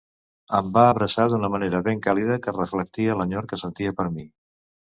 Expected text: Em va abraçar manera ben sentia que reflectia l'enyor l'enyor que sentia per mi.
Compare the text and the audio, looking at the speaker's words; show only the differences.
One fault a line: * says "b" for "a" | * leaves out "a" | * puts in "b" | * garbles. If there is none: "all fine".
* puts in "d'una"
* says "càlida" for "sentia"
* leaves out "l'enyor"